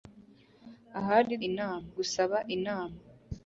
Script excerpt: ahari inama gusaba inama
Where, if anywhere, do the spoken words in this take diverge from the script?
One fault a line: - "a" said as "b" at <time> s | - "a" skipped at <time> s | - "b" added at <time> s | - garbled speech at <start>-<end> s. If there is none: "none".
none